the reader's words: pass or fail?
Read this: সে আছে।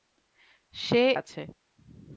pass